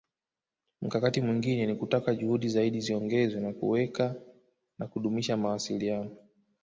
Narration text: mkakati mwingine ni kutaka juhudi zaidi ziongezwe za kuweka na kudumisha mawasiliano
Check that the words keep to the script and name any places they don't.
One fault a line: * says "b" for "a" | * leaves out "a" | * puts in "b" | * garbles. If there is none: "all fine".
all fine